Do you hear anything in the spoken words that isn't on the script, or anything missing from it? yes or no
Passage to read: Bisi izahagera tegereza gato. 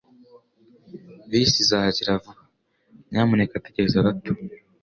yes